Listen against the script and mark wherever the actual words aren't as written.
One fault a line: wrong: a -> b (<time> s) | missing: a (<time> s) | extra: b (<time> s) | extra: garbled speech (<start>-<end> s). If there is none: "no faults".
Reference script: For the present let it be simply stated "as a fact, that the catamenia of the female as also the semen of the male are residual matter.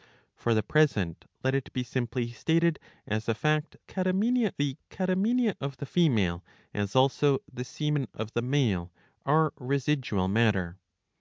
wrong: that -> catamenia (3.9 s)